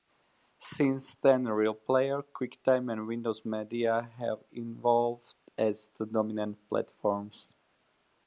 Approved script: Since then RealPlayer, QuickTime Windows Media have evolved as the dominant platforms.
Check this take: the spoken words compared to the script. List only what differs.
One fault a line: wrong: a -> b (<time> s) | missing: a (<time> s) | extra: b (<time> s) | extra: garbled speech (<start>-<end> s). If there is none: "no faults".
extra: and (2.9 s)